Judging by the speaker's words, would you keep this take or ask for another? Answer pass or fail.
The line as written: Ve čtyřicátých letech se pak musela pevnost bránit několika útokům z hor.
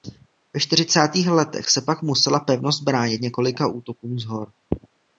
pass